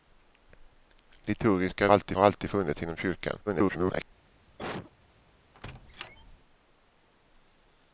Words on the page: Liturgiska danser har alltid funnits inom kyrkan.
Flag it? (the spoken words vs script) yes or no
yes